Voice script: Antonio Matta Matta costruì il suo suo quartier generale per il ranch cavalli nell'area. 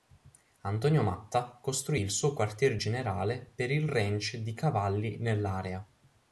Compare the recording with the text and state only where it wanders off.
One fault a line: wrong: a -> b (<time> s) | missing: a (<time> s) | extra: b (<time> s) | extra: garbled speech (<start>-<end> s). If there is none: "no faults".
missing: Matta (1.6 s)
missing: suo (2.3 s)
extra: di (4.4 s)